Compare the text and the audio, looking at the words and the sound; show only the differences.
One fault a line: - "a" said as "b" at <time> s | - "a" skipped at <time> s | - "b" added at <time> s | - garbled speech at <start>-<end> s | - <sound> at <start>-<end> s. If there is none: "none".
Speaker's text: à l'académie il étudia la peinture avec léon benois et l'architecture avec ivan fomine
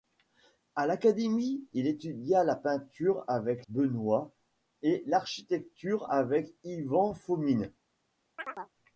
- "léon" skipped at 3.7 s
- chirp at 8.4-8.7 s